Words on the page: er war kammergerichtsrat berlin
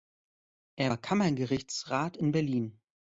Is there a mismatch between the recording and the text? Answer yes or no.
yes